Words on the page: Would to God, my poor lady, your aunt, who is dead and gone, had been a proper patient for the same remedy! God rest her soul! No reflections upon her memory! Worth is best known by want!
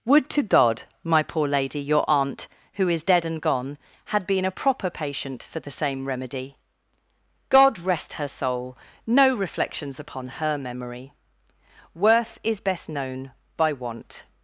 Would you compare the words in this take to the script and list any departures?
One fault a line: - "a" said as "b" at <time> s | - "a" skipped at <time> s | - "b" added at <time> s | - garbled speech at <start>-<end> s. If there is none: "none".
none